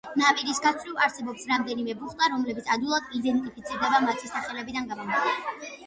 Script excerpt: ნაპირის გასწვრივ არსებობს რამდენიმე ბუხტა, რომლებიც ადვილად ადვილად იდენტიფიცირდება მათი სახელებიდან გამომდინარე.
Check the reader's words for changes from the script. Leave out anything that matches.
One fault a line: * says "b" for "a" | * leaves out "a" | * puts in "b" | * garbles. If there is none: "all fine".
* leaves out "ადვილად"